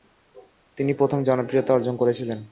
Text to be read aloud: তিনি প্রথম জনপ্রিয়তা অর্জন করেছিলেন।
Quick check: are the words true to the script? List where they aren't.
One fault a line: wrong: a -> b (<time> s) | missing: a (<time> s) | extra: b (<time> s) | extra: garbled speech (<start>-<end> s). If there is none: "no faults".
no faults